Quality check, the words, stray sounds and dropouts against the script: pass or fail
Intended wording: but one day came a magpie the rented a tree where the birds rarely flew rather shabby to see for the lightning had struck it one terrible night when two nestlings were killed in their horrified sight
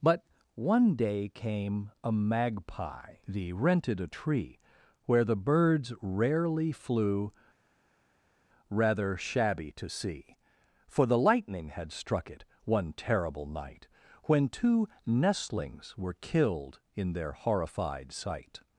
pass